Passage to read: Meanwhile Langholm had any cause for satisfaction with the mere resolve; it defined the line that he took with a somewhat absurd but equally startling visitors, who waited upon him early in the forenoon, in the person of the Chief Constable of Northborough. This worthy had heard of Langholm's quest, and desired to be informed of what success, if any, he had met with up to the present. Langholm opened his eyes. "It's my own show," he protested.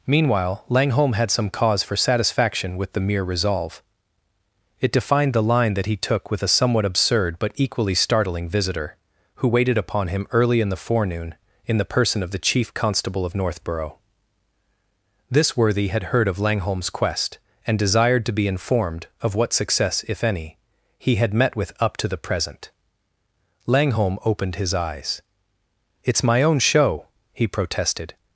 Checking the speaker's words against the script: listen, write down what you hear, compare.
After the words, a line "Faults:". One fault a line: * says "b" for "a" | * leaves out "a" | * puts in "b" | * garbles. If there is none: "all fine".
Meanwhile Langholm had some cause for satisfaction with the mere resolve; it defined the line that he took with a somewhat absurd but equally startling visitor, who waited upon him early in the forenoon, in the person of the Chief Constable of Northborough. This worthy had heard of Langholm's quest, and desired to be informed of what success, if any, he had met with up to the present. Langholm opened his eyes. "It's my own show," he protested.
Faults:
* says "some" for "any"
* says "visitor" for "visitors"